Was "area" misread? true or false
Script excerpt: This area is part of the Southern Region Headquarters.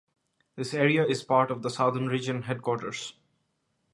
false